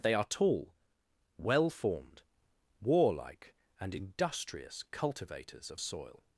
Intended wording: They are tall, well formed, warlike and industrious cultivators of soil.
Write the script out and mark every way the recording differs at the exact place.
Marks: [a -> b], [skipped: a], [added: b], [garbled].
They are tall, well formed, warlike and industrious cultivators of soil.